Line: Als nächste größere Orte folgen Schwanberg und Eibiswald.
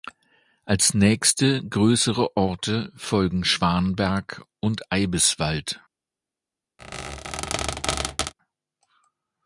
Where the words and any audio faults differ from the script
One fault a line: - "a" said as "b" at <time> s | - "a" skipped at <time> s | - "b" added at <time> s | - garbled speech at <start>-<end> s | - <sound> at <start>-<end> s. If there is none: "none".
- squeak at 6.8-8.3 s